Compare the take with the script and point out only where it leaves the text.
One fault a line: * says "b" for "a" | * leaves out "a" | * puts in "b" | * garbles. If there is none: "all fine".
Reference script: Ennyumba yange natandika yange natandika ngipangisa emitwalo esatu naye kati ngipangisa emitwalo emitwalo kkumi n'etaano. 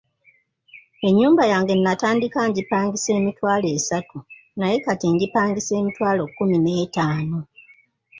* leaves out "yange natandika"
* leaves out "emitwalo"